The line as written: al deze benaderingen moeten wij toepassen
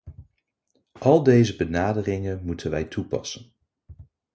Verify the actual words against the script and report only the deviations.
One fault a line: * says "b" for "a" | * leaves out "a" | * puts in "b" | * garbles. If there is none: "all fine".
all fine